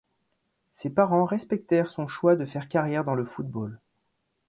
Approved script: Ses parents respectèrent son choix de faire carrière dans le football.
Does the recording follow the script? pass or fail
pass